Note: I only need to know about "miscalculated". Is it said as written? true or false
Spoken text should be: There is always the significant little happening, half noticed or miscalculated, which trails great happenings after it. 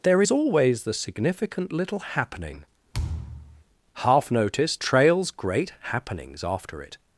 false